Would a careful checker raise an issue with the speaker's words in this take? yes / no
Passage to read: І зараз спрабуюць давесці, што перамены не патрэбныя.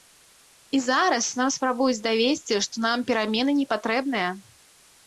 yes